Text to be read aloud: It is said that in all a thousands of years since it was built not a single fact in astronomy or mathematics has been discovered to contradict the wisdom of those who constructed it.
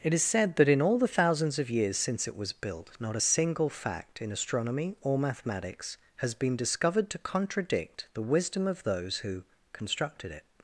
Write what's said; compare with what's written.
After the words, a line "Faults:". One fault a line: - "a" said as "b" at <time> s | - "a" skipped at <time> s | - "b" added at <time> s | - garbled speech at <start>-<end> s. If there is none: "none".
It is said that in all the thousands of years since it was built not a single fact in astronomy or mathematics has been discovered to contradict the wisdom of those who constructed it.
Faults:
- "a" said as "the" at 1.0 s